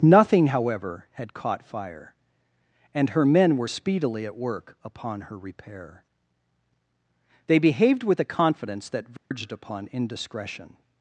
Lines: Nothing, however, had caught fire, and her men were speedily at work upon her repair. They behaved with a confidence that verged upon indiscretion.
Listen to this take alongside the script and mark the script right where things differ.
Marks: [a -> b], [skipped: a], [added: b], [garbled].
Nothing, however, had caught fire, and her men were speedily at work upon her repair. They behaved with a confidence that verged upon indiscretion.